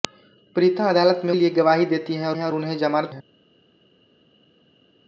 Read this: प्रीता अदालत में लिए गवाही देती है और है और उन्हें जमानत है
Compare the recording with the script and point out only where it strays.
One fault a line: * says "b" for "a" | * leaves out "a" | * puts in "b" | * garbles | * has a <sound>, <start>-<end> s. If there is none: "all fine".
all fine